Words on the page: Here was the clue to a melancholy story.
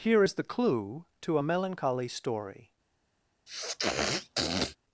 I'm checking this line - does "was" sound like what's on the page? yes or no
no